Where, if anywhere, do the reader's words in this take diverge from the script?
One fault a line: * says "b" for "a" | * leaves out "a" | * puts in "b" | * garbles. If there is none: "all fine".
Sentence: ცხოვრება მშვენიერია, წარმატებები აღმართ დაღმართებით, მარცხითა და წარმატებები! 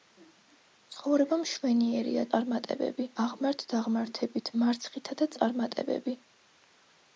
all fine